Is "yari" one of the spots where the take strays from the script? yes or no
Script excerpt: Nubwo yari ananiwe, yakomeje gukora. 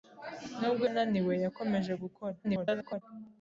yes